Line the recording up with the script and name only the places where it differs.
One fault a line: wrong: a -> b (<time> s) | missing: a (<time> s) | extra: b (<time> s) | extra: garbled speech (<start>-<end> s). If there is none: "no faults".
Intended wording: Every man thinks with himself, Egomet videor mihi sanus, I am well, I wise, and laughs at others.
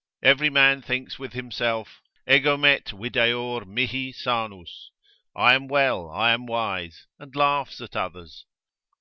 extra: am (6.3 s)